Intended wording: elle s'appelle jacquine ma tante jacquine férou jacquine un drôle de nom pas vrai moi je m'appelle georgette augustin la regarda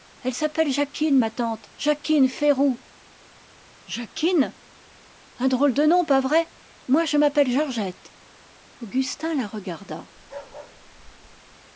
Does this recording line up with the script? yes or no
yes